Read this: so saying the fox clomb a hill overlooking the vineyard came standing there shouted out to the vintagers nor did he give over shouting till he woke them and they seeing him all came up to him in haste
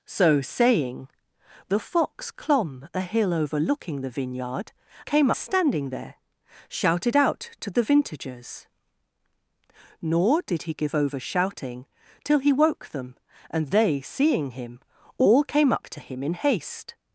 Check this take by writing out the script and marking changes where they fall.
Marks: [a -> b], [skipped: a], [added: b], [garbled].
so saying the fox clomb a hill overlooking the vineyard came standing there shouted out to the vintagers nor did he give over shouting till he woke them and they seeing him all came up to him in haste